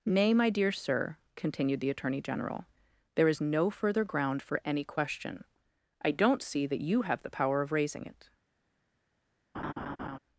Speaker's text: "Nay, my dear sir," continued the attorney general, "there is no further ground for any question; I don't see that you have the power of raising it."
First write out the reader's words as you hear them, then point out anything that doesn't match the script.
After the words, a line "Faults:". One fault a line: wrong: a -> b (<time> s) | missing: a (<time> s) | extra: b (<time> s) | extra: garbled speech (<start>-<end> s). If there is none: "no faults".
"Nay, my dear sir," continued the attorney general, "there is no further ground for any question; I don't see that you have the power of raising it."
Faults:
no faults